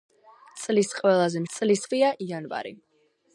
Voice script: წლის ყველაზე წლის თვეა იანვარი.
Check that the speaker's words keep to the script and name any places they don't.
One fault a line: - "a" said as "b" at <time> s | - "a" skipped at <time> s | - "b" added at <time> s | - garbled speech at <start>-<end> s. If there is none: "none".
none